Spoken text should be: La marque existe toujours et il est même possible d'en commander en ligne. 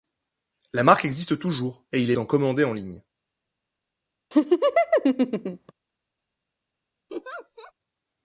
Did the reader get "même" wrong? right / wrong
wrong